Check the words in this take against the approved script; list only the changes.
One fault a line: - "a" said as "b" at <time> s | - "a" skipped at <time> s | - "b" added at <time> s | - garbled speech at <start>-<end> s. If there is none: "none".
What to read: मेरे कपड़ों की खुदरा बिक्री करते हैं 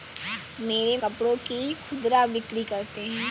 none